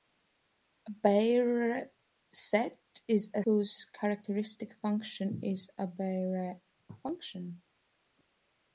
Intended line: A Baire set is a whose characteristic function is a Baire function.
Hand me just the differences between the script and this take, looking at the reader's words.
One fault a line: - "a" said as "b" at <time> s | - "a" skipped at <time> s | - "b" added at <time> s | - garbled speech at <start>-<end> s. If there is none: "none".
none